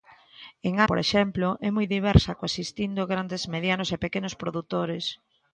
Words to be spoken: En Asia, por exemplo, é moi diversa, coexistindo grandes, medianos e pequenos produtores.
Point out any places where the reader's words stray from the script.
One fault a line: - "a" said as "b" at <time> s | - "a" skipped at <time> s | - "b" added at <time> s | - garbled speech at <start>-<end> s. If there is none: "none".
- "Asia" skipped at 0.7 s